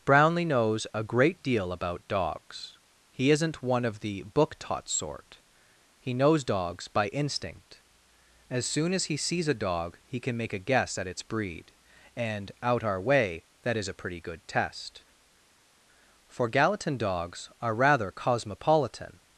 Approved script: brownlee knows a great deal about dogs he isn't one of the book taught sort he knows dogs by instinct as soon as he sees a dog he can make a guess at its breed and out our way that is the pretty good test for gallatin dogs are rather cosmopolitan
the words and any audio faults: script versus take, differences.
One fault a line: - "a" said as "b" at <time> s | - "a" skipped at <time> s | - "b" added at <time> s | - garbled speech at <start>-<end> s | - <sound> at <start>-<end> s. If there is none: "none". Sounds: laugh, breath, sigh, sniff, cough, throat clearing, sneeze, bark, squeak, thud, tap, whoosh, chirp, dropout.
- "the" said as "a" at 13.9 s